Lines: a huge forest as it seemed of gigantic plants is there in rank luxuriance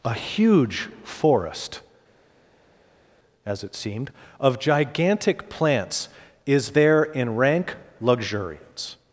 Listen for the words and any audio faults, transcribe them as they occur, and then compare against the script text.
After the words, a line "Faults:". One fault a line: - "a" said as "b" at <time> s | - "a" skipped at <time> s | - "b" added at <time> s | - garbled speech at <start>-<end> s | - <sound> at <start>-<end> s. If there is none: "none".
a huge forest as it seemed of gigantic plants is there in rank luxuriance
Faults:
none